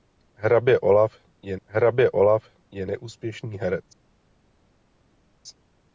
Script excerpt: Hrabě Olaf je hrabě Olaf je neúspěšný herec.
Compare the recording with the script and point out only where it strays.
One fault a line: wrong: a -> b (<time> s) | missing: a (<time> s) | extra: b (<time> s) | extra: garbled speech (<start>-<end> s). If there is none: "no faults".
no faults